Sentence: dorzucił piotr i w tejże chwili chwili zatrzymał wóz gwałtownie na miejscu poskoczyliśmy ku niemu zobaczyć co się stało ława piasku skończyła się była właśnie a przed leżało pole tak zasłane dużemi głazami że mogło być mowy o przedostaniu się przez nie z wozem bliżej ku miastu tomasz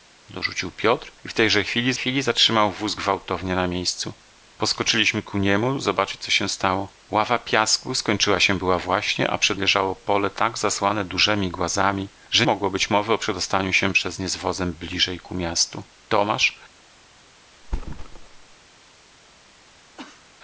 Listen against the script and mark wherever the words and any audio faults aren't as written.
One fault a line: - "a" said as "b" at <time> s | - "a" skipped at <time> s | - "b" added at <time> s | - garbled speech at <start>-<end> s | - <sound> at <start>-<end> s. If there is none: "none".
- thud at 17.6-18.6 s
- cough at 20.0-20.3 s